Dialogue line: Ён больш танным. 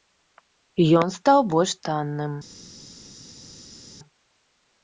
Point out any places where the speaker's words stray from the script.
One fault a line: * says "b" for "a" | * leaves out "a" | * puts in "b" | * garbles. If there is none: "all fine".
* puts in "стаў"